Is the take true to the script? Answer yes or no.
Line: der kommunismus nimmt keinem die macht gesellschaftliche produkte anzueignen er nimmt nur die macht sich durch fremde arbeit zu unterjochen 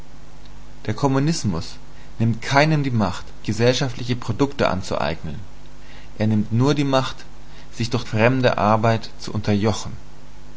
yes